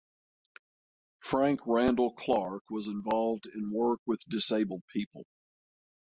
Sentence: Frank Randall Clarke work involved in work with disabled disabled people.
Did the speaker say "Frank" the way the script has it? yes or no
yes